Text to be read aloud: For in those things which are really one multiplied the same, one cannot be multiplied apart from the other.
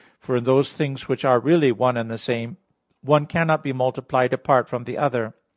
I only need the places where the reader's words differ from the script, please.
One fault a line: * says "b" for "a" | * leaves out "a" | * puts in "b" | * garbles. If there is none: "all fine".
* says "and" for "multiplied"